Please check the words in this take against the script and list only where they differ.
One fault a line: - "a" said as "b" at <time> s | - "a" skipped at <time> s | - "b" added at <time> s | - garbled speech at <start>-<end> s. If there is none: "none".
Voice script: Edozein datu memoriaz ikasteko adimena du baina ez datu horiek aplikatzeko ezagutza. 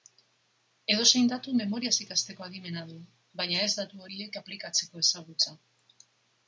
none